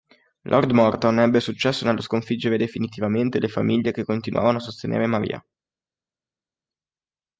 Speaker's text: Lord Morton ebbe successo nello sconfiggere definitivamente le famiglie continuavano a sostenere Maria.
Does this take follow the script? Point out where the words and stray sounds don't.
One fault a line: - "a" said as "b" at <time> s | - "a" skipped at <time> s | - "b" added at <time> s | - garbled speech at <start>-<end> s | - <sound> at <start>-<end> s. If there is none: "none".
- "che" added at 3.9 s